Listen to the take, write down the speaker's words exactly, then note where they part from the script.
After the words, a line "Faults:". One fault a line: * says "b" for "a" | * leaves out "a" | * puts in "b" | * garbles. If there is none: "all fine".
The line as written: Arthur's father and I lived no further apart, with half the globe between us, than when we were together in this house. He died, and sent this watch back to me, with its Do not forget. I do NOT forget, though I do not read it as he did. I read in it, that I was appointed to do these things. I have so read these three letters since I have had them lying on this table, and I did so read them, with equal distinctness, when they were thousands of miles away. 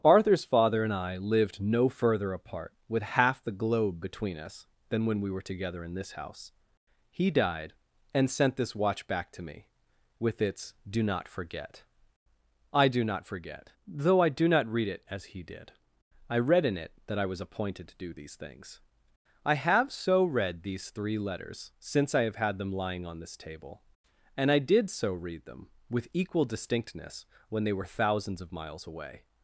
Arthur's father and I lived no further apart, with half the globe between us, than when we were together in this house. He died, and sent this watch back to me, with its Do not forget. I do NOT forget, though I do not read it as he did. I read in it, that I was appointed to do these things. I have so read these three letters since I have had them lying on this table, and I did so read them, with equal distinctness, when they were thousands of miles away.
Faults:
all fine